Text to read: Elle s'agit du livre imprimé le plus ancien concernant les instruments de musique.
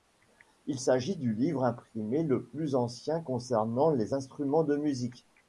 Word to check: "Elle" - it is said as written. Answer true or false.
false